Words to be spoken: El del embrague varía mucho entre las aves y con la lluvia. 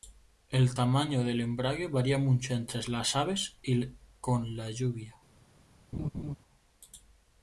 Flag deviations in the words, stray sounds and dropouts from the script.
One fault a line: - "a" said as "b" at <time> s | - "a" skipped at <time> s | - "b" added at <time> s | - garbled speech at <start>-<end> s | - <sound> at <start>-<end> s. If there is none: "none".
- "tamaño" added at 0.7 s
- laugh at 5.9-6.4 s